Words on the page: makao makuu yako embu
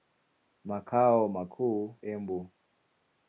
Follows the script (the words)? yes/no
no